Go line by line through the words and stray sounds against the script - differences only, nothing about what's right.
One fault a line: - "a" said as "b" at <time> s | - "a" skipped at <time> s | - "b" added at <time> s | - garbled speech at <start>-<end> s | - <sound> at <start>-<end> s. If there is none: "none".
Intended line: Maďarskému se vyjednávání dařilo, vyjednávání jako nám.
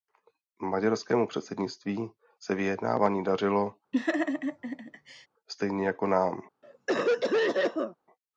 - "předsednictví" added at 1.3 s
- laugh at 3.9-5.3 s
- "vyjednávání" said as "stejně" at 5.5 s
- cough at 6.6-8.0 s